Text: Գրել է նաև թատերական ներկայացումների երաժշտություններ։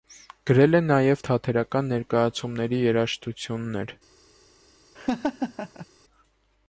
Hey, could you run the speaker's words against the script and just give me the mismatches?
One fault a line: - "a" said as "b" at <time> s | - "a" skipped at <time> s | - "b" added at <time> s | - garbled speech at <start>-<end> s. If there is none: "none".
none